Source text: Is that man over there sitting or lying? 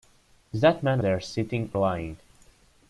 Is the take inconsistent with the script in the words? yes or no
yes